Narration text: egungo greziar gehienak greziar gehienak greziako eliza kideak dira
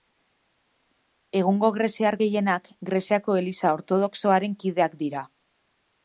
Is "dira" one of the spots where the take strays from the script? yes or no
no